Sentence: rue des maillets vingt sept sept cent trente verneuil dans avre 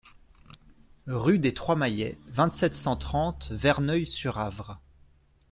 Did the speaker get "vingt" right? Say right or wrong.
right